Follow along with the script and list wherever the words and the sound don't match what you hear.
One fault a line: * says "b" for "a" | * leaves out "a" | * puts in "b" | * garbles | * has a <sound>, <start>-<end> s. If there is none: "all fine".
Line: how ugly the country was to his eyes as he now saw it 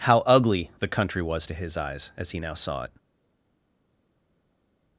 all fine